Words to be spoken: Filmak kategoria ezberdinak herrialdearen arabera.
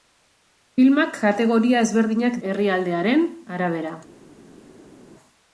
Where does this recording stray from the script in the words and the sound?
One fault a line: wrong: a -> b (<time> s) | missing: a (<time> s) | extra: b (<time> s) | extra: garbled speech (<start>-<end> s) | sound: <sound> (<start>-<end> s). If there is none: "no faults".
no faults